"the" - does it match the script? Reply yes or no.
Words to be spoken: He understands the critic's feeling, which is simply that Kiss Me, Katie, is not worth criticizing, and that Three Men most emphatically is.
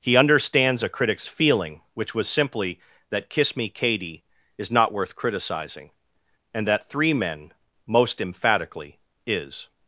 no